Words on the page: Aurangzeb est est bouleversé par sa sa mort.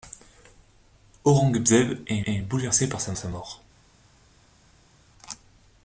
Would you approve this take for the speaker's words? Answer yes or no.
yes